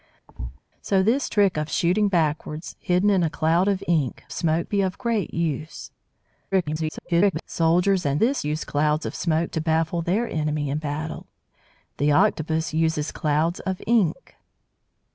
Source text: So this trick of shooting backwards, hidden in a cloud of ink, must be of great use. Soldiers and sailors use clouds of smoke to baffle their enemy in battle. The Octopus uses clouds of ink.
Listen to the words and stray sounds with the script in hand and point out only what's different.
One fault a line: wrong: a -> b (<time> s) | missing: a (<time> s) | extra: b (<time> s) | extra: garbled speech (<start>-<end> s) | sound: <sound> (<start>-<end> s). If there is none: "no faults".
sound: thud (0.3-0.6 s)
wrong: must -> smoke (4.3 s)
extra: garbled speech (6.5-7.4 s)
wrong: sailors -> this (8.2 s)